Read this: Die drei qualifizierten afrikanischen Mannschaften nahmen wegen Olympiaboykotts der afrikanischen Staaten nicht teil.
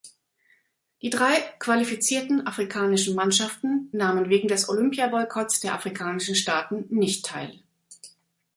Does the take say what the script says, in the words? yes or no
no